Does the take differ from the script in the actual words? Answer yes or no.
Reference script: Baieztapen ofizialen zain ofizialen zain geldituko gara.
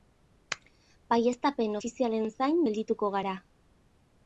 yes